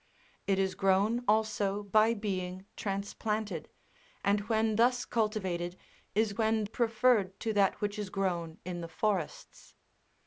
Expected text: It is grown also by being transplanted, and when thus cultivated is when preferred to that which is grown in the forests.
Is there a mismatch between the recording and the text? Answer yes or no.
no